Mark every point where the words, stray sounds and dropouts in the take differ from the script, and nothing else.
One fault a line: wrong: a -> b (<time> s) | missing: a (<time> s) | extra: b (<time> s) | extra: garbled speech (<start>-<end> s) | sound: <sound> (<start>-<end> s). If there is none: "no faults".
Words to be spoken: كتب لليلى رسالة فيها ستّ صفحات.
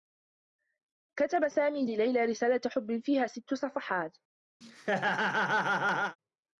extra: سامي (1.5 s)
extra: حبّ (2.7 s)
sound: laugh (4.6-6.2 s)